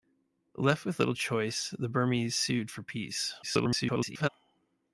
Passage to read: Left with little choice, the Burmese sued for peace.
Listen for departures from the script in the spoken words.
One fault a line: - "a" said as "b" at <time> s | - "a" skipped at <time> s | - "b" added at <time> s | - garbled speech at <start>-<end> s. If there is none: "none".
- garbled speech at 3.4-4.3 s